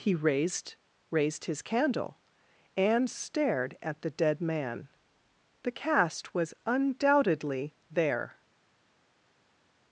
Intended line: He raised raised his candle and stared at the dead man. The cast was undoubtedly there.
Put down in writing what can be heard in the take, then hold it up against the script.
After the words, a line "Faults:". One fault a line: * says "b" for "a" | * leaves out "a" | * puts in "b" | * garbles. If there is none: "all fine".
He raised raised his candle and stared at the dead man. The cast was undoubtedly there.
Faults:
all fine